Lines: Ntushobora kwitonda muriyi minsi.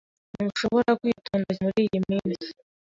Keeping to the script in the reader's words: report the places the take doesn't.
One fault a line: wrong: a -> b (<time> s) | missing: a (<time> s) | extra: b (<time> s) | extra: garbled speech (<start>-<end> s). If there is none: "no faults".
no faults